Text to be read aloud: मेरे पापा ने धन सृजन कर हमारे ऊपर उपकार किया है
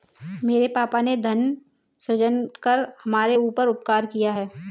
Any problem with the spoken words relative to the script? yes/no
no